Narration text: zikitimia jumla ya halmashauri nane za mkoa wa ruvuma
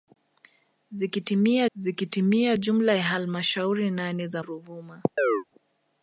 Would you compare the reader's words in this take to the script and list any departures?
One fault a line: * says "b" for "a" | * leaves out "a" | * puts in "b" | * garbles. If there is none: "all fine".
* puts in "zikitimia"
* leaves out "mkoa wa"